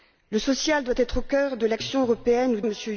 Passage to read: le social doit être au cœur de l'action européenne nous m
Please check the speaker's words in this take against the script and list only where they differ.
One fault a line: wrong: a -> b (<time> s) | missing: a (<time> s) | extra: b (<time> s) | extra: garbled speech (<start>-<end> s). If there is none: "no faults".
no faults